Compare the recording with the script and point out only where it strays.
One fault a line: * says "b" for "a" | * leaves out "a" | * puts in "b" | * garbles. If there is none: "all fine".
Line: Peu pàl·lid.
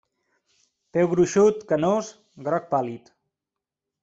* puts in "gruixut canós groc"